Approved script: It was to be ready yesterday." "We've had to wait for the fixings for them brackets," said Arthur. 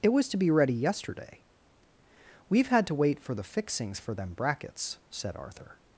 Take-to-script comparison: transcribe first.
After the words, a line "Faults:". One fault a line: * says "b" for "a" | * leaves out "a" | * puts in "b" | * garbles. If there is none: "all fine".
It was to be ready yesterday." "We've had to wait for the fixings for them brackets," said Arthur.
Faults:
all fine